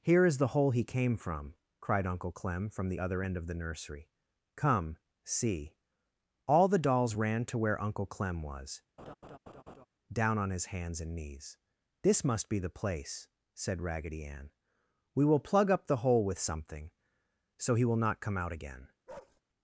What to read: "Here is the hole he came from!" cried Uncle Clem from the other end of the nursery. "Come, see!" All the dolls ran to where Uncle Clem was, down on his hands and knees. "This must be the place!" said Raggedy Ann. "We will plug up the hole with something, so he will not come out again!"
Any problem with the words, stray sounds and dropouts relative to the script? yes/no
yes